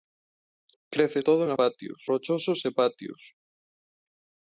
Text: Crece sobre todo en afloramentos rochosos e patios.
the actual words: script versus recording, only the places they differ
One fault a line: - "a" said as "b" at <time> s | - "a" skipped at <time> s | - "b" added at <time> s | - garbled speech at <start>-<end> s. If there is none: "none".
- "sobre" skipped at 1.2 s
- "afloramentos" said as "patios" at 1.6 s